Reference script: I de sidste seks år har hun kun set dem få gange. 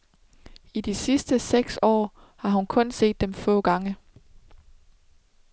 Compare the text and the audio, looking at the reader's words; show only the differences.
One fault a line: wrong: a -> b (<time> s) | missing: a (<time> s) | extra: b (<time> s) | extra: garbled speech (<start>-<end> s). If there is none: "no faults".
no faults